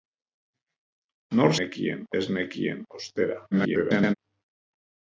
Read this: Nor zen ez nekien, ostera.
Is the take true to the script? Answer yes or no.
no